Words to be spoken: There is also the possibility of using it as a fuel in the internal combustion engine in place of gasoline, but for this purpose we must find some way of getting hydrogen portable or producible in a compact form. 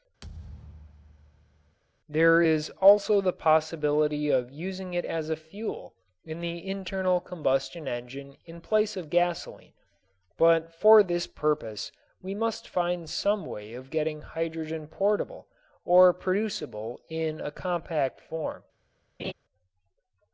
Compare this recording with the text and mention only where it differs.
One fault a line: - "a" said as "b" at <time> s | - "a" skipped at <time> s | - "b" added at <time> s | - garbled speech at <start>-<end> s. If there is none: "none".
none